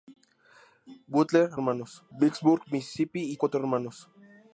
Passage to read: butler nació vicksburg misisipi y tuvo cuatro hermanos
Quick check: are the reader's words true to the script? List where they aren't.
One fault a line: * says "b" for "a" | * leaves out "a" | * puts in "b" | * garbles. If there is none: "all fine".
* says "hermanos" for "nació"
* leaves out "tuvo"